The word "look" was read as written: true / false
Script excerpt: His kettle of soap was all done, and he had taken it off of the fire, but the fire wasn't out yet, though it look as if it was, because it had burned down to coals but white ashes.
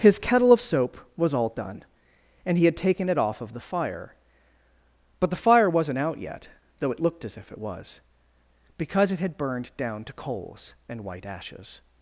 false